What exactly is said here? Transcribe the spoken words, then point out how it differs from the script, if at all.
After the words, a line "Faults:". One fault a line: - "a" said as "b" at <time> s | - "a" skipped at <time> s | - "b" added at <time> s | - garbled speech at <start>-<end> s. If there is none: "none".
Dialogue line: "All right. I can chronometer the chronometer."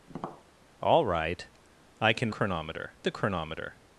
"All right. I can chronometer the chronometer."
Faults:
none